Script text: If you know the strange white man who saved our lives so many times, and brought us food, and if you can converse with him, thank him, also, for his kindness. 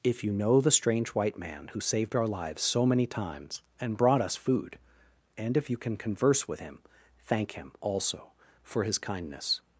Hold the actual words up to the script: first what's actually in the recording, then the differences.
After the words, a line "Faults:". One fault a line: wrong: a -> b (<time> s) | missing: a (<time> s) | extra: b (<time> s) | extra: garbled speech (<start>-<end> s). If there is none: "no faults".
If you know the strange white man who saved our lives so many times, and brought us food, and if you can converse with him, thank him, also, for his kindness.
Faults:
no faults